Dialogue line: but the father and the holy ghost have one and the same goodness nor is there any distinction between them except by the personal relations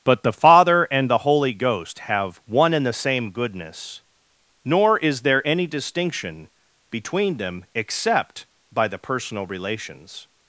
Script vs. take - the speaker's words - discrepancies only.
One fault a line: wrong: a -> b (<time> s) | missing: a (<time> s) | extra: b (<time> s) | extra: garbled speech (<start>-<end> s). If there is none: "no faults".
no faults